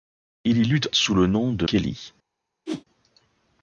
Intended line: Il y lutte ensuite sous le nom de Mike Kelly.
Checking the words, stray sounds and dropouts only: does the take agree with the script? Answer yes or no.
no